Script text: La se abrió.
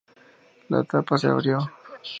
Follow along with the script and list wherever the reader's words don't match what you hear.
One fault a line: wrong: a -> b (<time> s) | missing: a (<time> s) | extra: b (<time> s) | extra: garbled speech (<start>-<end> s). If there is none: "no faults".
extra: tapa (0.8 s)